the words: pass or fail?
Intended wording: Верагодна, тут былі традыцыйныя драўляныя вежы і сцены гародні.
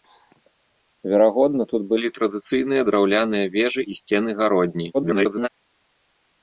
fail